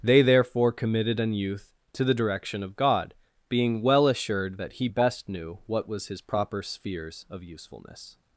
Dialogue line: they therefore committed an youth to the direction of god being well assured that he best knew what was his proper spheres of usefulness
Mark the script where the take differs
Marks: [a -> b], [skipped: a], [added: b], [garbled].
they therefore committed an youth to the direction of god being well assured that he best knew what was his proper spheres of usefulness